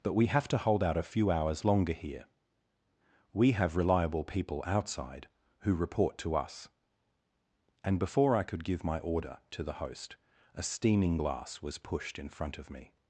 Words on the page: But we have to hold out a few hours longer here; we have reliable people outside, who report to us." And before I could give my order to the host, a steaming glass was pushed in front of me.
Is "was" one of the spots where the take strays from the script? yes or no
no